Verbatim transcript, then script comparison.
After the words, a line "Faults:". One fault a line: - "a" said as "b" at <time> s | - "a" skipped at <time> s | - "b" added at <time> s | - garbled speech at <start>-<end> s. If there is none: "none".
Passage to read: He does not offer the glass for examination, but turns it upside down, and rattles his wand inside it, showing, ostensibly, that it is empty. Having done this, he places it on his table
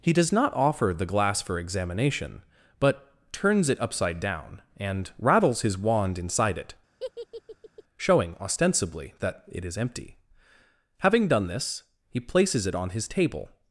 He does not offer the glass for examination, but turns it upside down, and rattles his wand inside it, showing, ostensibly, that it is empty. Having done this, he places it on his table
Faults:
none